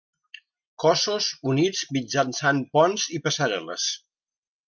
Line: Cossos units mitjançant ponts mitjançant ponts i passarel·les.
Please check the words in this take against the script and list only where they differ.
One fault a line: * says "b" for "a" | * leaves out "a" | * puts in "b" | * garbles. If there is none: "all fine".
* leaves out "mitjançant ponts"